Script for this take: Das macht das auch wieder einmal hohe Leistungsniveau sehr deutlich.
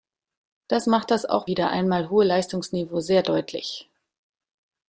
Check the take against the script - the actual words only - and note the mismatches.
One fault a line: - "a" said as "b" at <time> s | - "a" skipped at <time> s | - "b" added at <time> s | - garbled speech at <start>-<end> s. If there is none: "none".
none